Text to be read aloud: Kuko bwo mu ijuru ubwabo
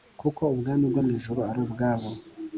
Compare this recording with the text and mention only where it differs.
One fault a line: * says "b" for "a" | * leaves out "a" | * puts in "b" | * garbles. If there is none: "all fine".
* puts in "ubwami"
* puts in "ari"